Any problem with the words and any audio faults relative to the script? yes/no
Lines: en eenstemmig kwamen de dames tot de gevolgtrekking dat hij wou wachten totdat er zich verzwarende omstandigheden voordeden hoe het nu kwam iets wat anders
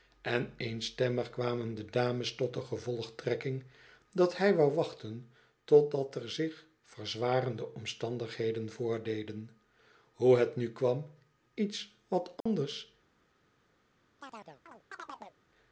yes